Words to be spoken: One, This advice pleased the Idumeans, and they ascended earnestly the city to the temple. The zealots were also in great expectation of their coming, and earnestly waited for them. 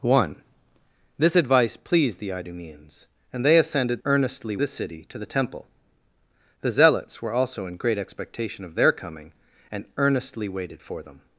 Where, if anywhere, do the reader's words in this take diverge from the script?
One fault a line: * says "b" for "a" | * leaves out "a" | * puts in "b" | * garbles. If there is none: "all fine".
all fine